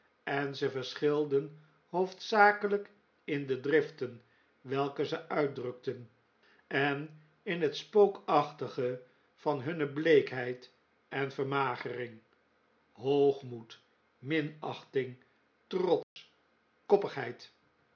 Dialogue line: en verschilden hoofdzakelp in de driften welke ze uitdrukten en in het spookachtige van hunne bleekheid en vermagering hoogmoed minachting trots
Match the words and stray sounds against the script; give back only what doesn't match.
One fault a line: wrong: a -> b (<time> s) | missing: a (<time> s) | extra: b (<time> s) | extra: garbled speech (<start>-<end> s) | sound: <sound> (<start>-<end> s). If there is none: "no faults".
extra: ze (0.6 s)
sound: dropout (16.0-16.2 s)